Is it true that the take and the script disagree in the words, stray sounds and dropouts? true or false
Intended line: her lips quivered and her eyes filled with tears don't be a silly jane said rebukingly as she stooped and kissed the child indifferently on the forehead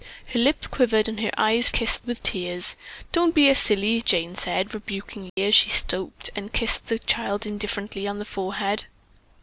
true